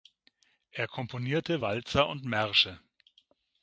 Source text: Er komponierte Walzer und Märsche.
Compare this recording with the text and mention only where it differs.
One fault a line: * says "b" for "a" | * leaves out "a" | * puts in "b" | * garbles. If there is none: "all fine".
all fine